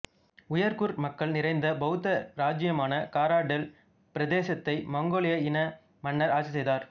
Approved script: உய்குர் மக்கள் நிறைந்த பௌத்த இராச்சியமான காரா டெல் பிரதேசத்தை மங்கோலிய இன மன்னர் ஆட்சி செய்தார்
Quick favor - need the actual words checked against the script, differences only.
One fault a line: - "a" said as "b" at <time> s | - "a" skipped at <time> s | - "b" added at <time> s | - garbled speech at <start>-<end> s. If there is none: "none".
none